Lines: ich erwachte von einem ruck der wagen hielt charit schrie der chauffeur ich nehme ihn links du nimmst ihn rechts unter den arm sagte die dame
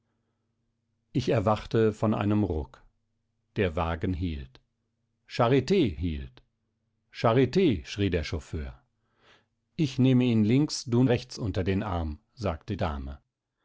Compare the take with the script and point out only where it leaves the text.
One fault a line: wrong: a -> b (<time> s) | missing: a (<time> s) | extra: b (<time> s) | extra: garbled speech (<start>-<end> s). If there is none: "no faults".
extra: hielt charit (6.0 s)
missing: nimmst ihn (11.0 s)
missing: die (12.8 s)